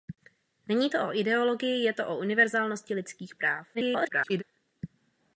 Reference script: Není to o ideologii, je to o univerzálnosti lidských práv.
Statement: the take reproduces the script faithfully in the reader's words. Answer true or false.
false